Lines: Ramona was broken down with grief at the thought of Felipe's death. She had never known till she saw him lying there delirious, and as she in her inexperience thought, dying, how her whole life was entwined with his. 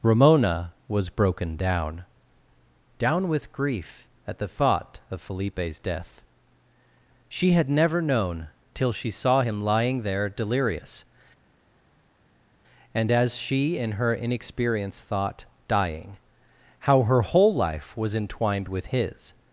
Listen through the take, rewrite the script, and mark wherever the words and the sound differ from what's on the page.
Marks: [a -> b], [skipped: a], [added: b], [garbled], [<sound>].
Ramona was broken down [added: down] with grief at the thought of Felipe's death. She had never known till she saw him lying there delirious, and as she in her inexperience thought, dying, how her whole life was entwined with his.